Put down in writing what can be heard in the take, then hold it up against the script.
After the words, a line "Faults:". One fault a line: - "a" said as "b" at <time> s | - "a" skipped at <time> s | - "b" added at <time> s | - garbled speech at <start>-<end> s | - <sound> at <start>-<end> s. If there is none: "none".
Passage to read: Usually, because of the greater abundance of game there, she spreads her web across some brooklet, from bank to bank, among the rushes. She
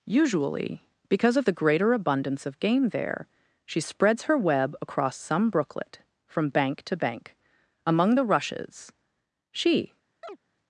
Usually, because of the greater abundance of game there, she spreads her web across some brooklet, from bank to bank, among the rushes. She
Faults:
- chirp at 10.2-10.4 s